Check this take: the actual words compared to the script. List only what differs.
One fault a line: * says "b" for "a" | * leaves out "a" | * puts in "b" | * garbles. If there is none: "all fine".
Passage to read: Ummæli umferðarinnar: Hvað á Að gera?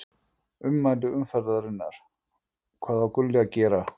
* puts in "Gulli"